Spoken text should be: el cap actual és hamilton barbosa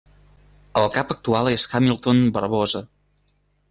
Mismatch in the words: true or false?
false